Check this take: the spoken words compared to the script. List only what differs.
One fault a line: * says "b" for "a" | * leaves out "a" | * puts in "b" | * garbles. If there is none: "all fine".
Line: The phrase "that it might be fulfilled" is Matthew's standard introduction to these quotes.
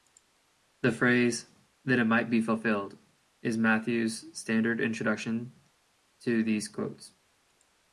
all fine